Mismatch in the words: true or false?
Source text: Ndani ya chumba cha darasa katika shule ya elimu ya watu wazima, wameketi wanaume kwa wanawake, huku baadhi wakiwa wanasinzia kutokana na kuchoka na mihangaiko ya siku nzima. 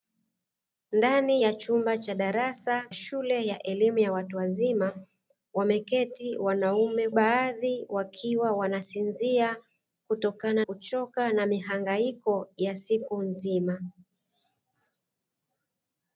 true